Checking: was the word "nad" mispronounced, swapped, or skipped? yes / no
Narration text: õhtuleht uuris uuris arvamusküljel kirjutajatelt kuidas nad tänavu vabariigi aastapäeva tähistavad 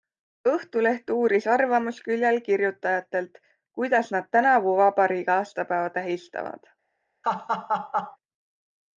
no